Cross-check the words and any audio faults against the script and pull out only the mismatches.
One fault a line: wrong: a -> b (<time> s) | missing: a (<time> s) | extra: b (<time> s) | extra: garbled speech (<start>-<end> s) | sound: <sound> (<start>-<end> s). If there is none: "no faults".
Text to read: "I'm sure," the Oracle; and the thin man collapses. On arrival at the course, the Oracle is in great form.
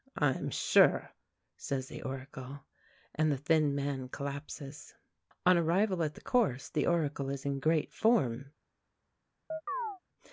extra: says (1.6 s)
sound: chirp (9.5-10.0 s)